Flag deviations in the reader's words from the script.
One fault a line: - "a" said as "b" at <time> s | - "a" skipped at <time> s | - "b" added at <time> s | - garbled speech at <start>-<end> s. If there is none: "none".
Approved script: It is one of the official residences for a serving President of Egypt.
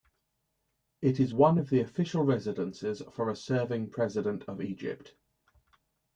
none